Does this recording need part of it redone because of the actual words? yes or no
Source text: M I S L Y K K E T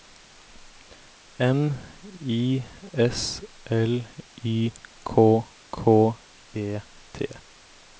no